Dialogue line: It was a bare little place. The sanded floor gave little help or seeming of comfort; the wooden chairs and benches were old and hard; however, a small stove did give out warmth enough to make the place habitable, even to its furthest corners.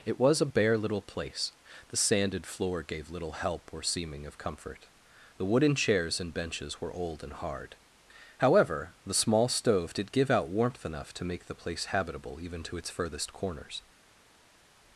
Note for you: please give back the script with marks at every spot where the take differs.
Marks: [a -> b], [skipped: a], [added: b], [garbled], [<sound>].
It was a bare little place. The sanded floor gave little help or seeming of comfort; the wooden chairs and benches were old and hard; however, [a -> the] small stove did give out warmth enough to make the place habitable, even to its furthest corners.